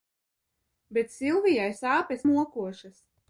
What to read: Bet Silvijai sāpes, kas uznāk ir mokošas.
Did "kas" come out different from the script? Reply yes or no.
yes